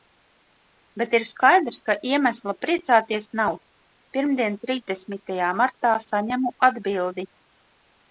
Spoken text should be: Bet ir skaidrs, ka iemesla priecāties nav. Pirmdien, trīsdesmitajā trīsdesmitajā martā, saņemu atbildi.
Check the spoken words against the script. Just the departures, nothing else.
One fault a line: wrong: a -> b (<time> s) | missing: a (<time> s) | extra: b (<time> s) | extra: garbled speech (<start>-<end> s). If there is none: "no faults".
missing: trīsdesmitajā (5.5 s)